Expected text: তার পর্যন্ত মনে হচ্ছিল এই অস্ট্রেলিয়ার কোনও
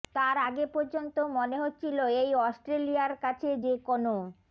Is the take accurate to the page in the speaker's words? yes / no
no